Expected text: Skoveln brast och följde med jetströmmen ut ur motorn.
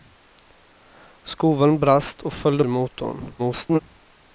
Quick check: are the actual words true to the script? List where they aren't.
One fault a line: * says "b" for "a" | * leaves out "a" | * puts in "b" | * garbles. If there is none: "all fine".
* leaves out "med jetströmmen ut"
* garbles